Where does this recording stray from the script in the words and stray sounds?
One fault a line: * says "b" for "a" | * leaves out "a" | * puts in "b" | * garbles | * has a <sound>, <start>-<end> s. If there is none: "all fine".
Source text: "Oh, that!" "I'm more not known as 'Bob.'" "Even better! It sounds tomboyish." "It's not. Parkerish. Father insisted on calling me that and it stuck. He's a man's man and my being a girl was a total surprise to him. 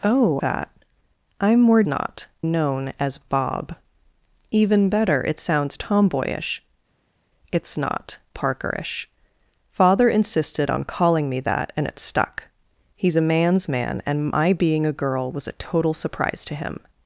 all fine